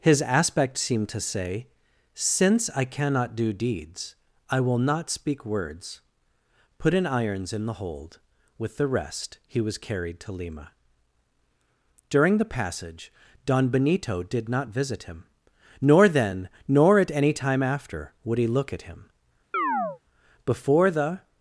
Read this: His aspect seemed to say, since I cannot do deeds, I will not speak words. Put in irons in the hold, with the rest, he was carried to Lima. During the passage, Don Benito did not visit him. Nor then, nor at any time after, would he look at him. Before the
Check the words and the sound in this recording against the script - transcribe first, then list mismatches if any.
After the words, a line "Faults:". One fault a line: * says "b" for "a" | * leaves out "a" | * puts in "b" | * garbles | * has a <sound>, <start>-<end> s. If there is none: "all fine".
His aspect seemed to say, since I cannot do deeds, I will not speak words. Put in irons in the hold, with the rest, he was carried to Lima. During the passage, Don Benito did not visit him. Nor then, nor at any time after, would he look at him. Before the
Faults:
* has a chirp, 19.5-20.0 s